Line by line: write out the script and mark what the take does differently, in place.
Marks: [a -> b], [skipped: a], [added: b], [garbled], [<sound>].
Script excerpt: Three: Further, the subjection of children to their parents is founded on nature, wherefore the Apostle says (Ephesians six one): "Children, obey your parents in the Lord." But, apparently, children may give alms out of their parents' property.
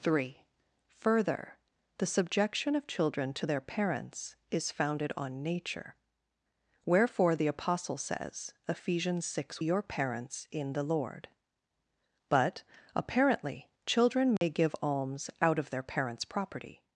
Three: Further, the subjection of children to their parents is founded on nature, wherefore the Apostle says (Ephesians six [skipped: one): "Children, obey] your parents in the Lord." But, apparently, children may [dropout] give alms out of their parents' property.